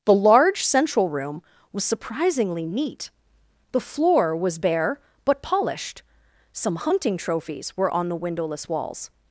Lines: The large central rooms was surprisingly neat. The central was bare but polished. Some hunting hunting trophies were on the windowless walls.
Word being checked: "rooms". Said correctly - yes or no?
no